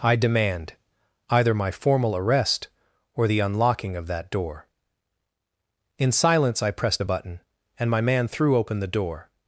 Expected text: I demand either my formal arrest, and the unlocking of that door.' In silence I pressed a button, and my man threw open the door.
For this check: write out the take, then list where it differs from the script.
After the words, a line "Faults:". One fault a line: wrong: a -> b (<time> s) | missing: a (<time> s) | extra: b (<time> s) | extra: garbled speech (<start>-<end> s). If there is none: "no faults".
I demand either my formal arrest, or the unlocking of that door.' In silence I pressed a button, and my man threw open the door.
Faults:
wrong: and -> or (3.1 s)